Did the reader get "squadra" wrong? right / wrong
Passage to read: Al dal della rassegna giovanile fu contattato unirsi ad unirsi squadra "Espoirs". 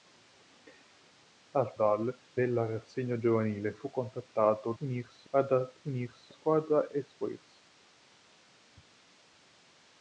right